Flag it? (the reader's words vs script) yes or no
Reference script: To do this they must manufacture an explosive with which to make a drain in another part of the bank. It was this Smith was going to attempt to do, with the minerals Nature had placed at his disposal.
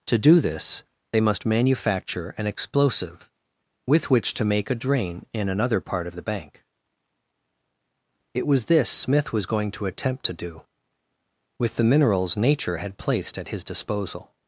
no